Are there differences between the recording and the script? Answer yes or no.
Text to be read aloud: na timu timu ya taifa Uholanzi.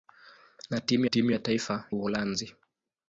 no